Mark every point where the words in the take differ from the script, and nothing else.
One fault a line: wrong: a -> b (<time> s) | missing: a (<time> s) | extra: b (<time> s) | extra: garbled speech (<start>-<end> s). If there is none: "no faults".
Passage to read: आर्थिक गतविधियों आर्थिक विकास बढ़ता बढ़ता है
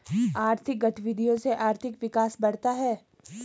extra: से (1.4 s)
missing: बढ़ता (2.7 s)